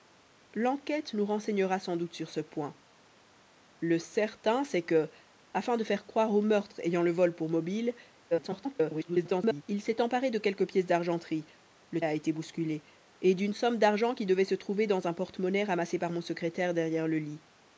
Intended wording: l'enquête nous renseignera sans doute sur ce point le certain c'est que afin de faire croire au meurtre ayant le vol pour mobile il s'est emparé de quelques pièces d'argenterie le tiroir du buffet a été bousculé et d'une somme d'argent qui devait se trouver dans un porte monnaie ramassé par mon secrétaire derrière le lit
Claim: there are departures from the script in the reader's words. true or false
true